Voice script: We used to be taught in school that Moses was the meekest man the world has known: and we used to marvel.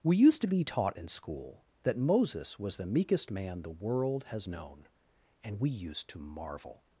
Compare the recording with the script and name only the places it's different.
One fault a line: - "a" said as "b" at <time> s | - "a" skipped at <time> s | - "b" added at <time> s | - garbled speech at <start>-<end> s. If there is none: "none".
none